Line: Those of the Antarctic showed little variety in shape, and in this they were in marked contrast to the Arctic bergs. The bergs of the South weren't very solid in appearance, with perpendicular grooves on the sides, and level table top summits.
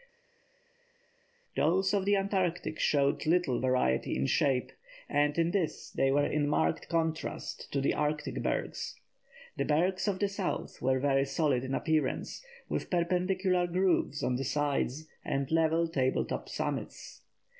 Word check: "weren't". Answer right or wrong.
wrong